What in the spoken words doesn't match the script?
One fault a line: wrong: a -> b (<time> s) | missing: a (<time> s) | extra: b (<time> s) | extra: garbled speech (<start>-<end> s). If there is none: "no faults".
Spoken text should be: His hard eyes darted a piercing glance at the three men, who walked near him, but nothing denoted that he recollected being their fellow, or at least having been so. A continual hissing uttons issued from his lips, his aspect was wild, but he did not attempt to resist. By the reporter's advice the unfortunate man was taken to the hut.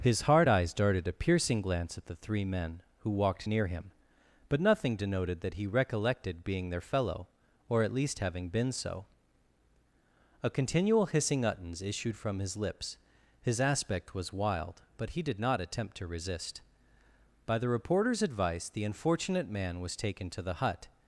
no faults